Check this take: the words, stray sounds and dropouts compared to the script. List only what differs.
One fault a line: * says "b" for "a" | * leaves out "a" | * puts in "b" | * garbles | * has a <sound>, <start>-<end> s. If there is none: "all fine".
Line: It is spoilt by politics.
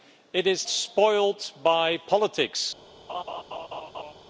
* has a laugh, 3.1-4.1 s